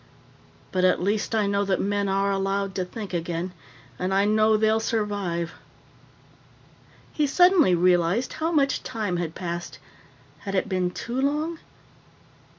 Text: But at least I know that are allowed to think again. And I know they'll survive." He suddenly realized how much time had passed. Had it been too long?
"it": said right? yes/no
yes